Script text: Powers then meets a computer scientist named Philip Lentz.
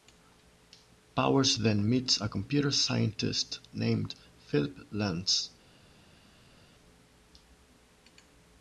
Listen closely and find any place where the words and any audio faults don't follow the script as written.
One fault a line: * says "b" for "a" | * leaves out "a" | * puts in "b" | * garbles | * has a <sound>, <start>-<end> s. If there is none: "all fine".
all fine